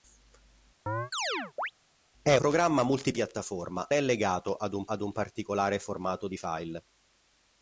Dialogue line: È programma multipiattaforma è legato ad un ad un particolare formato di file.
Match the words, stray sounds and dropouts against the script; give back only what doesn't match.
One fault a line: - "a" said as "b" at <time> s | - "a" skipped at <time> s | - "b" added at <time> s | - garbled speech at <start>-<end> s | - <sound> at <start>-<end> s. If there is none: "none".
- chirp at 0.9-1.7 s